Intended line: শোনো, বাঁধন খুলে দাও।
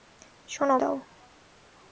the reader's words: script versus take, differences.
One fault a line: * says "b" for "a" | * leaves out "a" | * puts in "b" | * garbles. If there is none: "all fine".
* leaves out "বাঁধন খুলে"